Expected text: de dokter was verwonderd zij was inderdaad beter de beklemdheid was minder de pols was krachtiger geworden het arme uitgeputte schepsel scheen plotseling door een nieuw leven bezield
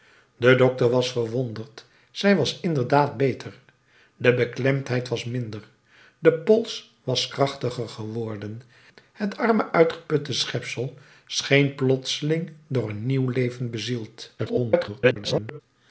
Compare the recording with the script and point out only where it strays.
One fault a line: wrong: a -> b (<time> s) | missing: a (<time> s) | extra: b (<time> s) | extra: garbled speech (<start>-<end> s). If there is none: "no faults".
extra: garbled speech (14.4-15.6 s)